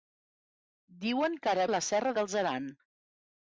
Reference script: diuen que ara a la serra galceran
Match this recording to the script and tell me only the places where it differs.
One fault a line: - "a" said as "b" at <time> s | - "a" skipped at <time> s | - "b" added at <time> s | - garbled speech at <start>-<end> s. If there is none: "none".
none